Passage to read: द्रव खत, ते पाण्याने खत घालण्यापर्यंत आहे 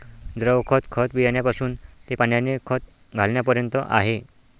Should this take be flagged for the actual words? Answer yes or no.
yes